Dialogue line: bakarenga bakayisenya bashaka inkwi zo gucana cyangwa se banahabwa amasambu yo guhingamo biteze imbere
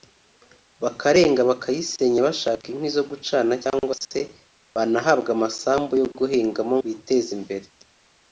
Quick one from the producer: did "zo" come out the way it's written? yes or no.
yes